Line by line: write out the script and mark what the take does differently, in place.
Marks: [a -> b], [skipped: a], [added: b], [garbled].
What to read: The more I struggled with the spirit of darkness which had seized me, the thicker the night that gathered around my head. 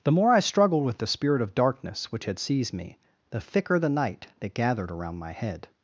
The more I struggled with the spirit of darkness which had seized me, the thicker the night that gathered around my head.